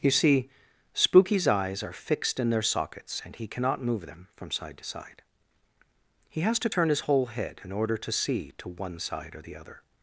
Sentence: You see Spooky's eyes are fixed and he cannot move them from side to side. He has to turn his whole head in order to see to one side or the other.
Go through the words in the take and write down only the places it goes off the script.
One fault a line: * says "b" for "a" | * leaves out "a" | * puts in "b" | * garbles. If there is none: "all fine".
* puts in "in their sockets"